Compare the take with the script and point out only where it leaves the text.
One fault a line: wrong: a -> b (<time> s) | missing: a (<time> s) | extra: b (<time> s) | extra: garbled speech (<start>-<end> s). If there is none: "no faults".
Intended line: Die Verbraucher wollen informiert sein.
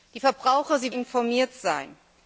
missing: wollen (0.8 s)